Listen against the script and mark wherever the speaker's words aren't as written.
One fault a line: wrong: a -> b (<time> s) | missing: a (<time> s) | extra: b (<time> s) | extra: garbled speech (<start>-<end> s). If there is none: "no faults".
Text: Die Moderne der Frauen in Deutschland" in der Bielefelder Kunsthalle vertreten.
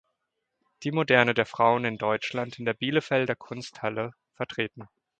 no faults